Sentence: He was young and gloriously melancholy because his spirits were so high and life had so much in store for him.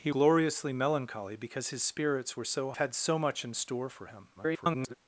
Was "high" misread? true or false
true